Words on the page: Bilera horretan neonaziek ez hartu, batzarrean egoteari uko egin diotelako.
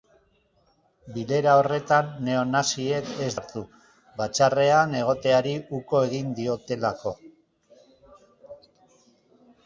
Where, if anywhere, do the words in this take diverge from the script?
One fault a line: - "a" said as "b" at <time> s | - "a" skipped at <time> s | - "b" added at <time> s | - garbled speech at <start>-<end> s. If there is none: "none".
none